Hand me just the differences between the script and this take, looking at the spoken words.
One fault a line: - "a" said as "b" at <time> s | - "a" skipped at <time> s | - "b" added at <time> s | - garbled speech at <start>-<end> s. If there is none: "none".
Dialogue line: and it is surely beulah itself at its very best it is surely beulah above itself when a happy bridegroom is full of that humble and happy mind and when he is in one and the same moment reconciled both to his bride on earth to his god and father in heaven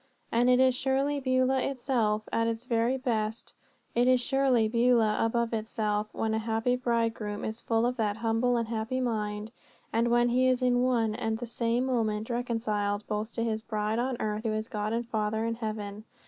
none